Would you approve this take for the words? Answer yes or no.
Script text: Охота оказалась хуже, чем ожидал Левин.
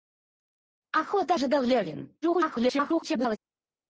no